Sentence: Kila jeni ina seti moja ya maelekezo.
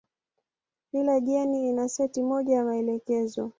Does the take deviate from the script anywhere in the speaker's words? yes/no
no